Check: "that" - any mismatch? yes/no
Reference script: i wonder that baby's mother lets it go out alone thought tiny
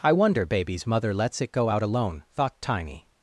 yes